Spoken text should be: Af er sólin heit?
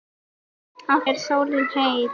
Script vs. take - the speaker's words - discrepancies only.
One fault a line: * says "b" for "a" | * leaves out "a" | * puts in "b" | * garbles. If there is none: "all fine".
all fine